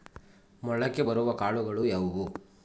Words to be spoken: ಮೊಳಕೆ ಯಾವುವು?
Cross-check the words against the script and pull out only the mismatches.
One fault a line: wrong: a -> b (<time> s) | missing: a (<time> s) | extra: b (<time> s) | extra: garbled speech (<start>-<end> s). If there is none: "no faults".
extra: ಬರುವ ಕಾಳುಗಳು (1.0 s)